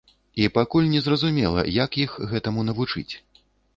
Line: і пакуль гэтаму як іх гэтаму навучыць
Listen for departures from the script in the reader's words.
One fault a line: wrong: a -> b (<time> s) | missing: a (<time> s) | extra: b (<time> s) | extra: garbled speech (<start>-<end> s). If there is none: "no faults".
wrong: гэтаму -> незразумела (0.9 s)